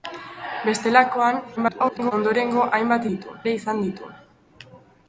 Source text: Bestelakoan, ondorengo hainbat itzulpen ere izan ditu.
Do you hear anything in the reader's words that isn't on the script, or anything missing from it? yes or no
yes